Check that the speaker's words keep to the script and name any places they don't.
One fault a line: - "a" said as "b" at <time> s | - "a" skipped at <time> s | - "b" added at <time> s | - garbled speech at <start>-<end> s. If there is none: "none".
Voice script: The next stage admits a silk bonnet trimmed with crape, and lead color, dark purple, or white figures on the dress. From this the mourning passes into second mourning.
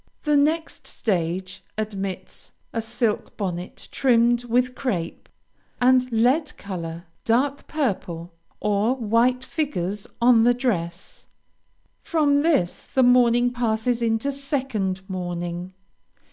none